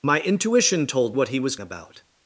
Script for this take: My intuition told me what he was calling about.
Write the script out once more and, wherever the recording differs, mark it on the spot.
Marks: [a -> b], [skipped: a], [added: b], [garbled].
My intuition told [skipped: me] what he was [skipped: calling] about.